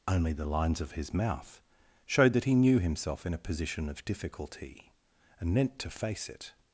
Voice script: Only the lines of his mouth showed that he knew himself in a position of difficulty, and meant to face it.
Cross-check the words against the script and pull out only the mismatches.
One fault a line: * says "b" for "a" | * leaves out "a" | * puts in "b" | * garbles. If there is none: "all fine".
all fine